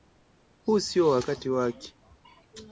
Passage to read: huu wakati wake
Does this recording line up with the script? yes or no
no